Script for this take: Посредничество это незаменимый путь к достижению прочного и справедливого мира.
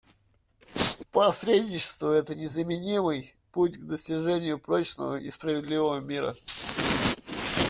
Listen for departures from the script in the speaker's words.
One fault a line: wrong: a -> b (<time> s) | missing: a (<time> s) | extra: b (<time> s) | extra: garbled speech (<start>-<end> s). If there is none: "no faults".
no faults